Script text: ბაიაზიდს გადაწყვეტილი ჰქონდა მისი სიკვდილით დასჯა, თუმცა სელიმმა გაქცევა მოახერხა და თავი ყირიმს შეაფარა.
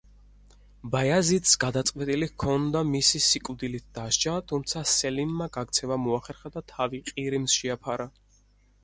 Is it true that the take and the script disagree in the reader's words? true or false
false